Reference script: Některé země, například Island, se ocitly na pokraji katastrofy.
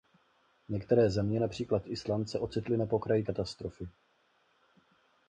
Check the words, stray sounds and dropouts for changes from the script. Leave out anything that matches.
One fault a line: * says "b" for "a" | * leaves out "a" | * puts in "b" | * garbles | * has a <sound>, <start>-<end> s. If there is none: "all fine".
all fine